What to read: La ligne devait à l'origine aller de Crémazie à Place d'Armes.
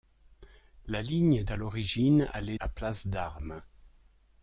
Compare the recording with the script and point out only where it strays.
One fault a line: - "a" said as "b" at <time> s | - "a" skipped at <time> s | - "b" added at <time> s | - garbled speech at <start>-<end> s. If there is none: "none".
- "devait" skipped at 1.4 s
- "de Crémazie" skipped at 2.6 s